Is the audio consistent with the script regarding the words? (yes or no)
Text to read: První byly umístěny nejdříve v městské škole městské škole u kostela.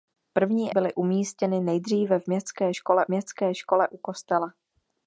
yes